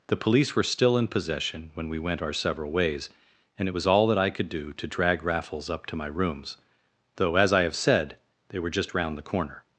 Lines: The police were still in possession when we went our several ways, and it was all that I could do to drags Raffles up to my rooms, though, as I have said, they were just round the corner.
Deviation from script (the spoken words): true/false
true